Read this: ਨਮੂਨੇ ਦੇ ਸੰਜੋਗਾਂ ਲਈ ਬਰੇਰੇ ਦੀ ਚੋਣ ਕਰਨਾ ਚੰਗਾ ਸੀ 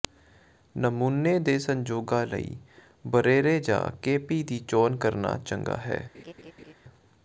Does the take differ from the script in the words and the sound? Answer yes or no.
yes